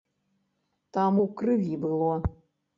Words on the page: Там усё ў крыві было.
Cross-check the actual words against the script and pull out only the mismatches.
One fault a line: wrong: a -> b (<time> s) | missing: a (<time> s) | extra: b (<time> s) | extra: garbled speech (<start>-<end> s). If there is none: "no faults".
missing: усё (1.2 s)